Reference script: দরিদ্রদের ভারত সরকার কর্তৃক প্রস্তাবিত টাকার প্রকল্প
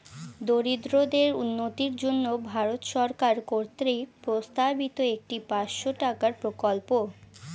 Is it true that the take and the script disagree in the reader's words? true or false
true